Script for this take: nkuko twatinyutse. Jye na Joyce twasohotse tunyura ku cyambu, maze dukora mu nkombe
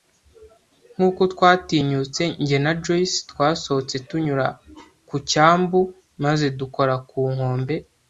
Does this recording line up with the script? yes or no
no